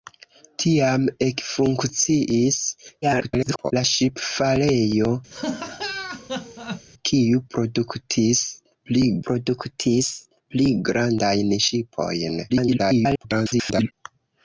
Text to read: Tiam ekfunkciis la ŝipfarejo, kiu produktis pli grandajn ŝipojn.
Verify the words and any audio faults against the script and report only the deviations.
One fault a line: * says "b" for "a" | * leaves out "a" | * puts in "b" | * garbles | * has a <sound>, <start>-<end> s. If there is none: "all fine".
* garbles
* has a laugh, 5.3-6.9 s
* puts in "produktis pli"
* garbles